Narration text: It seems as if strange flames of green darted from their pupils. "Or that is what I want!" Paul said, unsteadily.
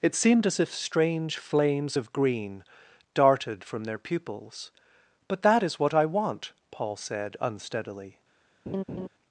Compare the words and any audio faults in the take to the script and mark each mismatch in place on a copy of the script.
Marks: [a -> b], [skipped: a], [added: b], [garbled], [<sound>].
It [seems -> seemed] as if strange flames of green darted from their pupils. ["Or -> But] that is what I want!" Paul said, unsteadily. [laugh]